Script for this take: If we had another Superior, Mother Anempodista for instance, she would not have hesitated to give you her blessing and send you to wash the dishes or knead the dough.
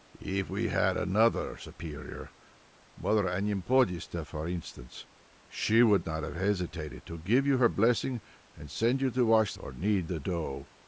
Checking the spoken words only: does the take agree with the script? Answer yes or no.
no